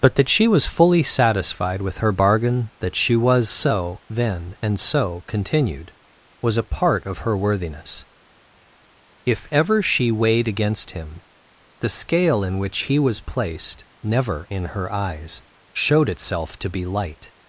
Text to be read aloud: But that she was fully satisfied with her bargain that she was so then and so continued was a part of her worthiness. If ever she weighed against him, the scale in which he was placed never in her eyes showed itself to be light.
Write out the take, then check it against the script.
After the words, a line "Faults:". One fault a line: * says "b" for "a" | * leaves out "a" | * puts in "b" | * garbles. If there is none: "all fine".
But that she was fully satisfied with her bargain that she was so then and so continued was a part of her worthiness. If ever she weighed against him, the scale in which he was placed never in her eyes showed itself to be light.
Faults:
all fine